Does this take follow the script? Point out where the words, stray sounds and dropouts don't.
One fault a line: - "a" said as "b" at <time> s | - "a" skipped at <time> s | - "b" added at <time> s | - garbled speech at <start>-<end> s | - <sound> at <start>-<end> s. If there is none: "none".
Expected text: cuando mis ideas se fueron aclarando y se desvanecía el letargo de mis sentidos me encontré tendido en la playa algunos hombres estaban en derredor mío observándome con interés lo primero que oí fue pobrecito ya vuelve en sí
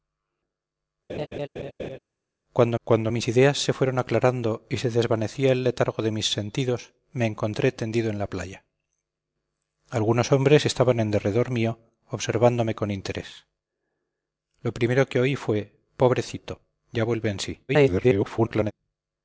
- laugh at 1.1-2.0 s
- "cuando" added at 2.8 s
- garbled speech at 17.7-18.7 s